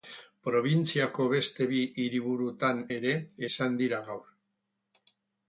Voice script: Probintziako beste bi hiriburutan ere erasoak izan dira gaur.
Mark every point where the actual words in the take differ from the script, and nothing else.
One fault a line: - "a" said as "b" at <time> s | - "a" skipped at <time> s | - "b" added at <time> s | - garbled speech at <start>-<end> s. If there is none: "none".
- "erasoak" skipped at 3.2 s